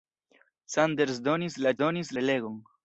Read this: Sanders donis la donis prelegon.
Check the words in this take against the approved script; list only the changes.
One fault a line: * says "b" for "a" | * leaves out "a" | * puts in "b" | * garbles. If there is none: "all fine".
all fine